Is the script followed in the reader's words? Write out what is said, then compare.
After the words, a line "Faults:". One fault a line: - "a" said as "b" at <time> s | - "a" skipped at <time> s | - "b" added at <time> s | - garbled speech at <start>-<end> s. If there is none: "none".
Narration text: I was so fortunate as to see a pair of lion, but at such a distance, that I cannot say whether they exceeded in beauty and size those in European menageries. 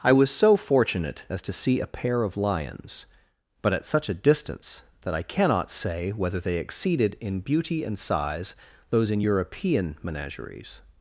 I was so fortunate as to see a pair of lions, but at such a distance, that I cannot say whether they exceeded in beauty and size those in European menageries.
Faults:
- "lion" said as "lions" at 2.4 s